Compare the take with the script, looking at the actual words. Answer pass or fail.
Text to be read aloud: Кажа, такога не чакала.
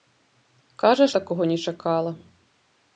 pass